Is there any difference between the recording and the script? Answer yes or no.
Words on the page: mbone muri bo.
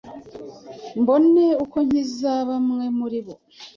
yes